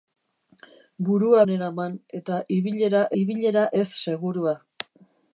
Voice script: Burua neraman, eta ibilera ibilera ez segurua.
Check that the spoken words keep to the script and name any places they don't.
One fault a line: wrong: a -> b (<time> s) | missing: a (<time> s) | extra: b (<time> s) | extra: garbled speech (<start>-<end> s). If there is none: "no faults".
no faults